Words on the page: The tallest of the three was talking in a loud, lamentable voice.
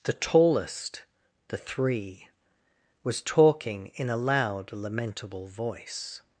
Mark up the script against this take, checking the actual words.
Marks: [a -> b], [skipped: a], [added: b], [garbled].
The tallest [skipped: of] the three was talking in a loud, lamentable voice.